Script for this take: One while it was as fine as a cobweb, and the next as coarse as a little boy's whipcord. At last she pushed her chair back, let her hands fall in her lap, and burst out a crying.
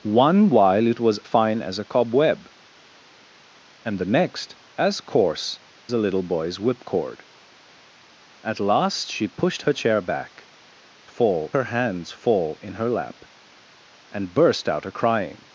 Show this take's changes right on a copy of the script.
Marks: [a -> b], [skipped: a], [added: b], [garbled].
One while it was [skipped: as] fine as a cobweb, and the next as coarse [skipped: as] a little boy's whipcord. At last she pushed her chair back, [let -> fall] her hands fall in her lap, and burst out a crying.